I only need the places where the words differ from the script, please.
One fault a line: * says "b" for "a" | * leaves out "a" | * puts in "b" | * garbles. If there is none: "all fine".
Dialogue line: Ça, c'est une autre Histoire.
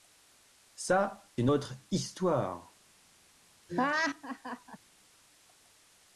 * leaves out "c'est"